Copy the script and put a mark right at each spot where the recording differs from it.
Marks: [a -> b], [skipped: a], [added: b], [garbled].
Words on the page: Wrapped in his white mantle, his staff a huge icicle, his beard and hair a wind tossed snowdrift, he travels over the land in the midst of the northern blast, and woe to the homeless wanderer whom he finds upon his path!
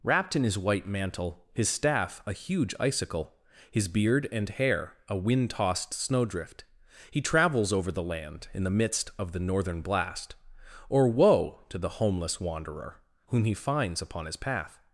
Wrapped in his white mantle, his staff a huge icicle, his beard and hair a wind tossed snowdrift, he travels over the land in the midst of the northern blast, [and -> or] woe to the homeless wanderer whom he finds upon his path!